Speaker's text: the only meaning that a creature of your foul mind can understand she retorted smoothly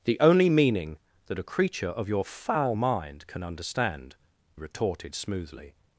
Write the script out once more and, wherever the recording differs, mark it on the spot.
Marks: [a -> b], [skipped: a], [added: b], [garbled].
the only meaning that a creature of your foul mind can understand [skipped: she] retorted smoothly